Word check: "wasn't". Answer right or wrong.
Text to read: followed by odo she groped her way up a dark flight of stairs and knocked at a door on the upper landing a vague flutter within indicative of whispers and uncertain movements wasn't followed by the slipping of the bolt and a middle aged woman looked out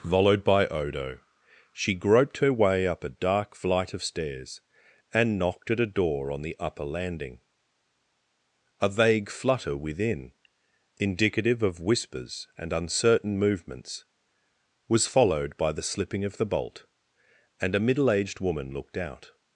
wrong